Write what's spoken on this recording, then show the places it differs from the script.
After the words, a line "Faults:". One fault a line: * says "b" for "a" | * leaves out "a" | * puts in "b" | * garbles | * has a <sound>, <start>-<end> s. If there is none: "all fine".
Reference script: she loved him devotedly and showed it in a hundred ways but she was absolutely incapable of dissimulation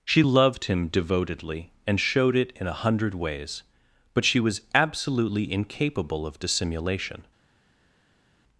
she loved him devotedly and showed it in a hundred ways but she was absolutely incapable of dissimulation
Faults:
all fine